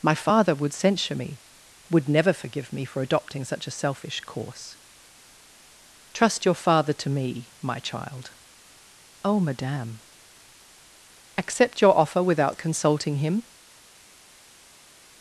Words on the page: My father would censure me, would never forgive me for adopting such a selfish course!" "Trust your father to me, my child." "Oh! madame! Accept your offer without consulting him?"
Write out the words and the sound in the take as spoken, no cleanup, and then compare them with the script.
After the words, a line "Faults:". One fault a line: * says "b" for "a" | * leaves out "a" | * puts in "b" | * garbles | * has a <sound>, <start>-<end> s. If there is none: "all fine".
My father would censure me, would never forgive me for adopting such a selfish course!" "Trust your father to me, my child." "Oh! madame! Accept your offer without consulting him?"
Faults:
all fine